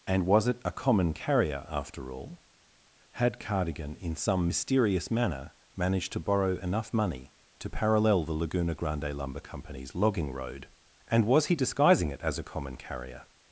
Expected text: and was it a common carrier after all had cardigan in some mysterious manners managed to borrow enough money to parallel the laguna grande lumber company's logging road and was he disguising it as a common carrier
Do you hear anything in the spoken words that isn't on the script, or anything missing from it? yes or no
yes